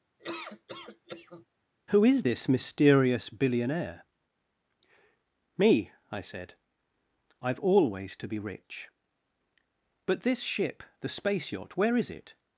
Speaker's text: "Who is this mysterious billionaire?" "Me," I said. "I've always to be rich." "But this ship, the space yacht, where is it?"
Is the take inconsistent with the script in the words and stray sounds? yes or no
yes